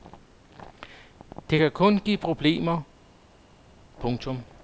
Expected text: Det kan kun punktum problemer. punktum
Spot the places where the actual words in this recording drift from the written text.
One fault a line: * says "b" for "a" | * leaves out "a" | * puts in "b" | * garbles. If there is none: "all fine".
* says "give" for "punktum"